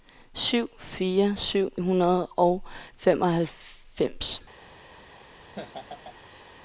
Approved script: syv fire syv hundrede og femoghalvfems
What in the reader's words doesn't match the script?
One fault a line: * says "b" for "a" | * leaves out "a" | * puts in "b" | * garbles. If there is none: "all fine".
all fine